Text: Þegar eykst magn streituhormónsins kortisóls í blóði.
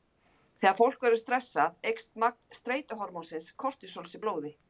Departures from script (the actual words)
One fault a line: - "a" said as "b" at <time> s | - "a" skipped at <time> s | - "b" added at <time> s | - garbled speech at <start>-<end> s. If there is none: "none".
- "fólk verður stressað" added at 0.8 s